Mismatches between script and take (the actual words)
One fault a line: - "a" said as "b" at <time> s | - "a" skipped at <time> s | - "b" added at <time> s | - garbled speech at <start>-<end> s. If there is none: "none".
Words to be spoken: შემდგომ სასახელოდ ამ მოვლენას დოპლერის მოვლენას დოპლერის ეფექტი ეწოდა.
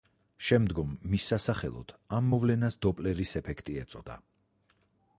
- "მის" added at 1.1 s
- "მოვლენას დოპლერის" skipped at 3.4 s